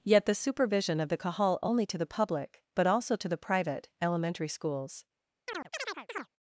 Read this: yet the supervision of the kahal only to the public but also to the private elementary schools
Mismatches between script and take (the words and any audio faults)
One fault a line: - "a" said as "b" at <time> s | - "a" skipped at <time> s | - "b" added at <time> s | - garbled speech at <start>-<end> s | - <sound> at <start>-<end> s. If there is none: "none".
- chirp at 5.5-6.3 s